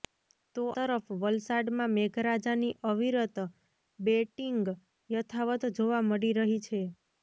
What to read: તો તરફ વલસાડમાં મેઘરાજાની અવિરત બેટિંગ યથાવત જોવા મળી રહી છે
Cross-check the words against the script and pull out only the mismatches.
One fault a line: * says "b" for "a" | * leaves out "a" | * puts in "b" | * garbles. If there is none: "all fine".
all fine